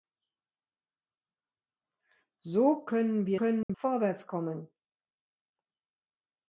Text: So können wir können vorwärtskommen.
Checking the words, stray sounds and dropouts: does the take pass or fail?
fail